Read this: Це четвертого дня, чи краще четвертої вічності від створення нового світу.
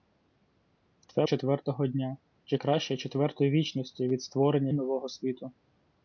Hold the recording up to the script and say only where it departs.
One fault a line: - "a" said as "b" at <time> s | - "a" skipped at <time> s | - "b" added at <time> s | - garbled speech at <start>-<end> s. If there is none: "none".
none